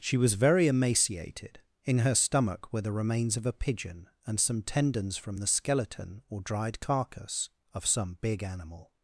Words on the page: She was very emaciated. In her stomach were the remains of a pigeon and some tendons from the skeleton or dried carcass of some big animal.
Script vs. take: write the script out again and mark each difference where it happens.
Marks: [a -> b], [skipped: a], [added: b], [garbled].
She was very emaciated. In her stomach were the remains of a pigeon and some tendons from the skeleton or dried carcass of some big animal.